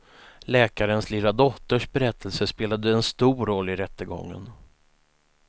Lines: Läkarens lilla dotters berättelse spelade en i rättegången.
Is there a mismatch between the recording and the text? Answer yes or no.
yes